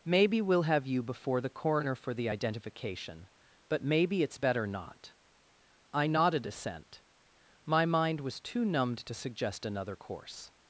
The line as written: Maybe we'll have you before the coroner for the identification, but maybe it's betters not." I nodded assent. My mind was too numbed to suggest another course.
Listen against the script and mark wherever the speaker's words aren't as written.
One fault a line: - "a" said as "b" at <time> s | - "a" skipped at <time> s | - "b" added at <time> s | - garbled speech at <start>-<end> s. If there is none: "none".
- "betters" said as "better" at 4.4 s